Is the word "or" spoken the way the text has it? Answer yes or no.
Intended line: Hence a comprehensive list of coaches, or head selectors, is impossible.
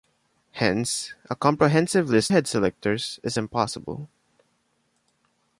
no